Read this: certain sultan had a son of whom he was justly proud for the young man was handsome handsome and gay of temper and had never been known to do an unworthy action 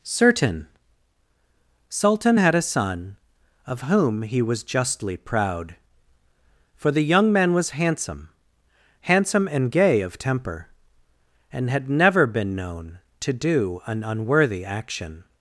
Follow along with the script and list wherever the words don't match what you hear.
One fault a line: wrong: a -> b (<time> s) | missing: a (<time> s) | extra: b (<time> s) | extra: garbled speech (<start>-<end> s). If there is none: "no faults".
no faults